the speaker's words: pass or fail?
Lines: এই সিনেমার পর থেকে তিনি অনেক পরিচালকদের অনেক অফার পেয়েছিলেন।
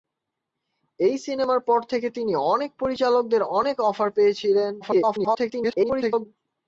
fail